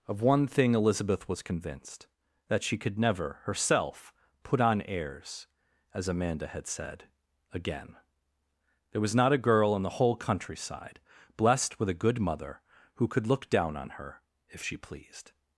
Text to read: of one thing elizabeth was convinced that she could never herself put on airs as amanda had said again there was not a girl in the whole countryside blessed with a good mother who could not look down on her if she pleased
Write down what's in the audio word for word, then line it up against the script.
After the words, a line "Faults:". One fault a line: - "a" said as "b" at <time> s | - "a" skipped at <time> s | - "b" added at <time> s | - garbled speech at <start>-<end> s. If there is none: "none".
of one thing elizabeth was convinced that she could never herself put on airs as amanda had said again there was not a girl in the whole countryside blessed with a good mother who could look down on her if she pleased
Faults:
- "not" skipped at 13.3 s